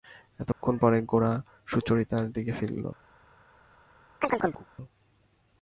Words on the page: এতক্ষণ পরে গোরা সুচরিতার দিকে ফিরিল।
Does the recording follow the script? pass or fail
pass